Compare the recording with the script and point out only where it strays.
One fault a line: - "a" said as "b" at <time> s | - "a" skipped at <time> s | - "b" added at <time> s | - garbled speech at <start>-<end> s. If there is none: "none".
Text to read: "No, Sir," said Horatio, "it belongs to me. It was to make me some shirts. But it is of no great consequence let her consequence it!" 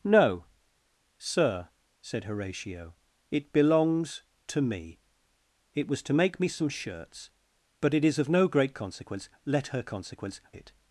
none